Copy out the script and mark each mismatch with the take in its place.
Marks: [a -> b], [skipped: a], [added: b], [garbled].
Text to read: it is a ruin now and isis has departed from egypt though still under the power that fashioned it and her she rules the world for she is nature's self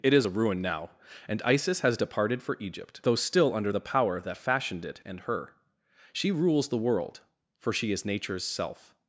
it is a ruin now and isis has departed [from -> for] egypt though still under the power that fashioned it and her she rules the world for she is nature's self